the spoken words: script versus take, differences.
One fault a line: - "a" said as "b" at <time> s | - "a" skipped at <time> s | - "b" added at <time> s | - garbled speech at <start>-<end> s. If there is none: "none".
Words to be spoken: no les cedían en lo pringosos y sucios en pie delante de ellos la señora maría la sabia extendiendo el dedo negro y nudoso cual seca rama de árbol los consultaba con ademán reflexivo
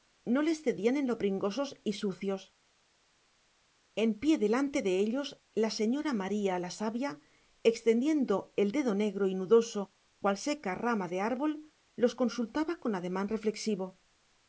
none